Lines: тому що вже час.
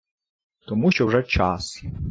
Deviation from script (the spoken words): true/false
false